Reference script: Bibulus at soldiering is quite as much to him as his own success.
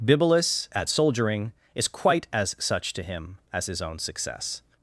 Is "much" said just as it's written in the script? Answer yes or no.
no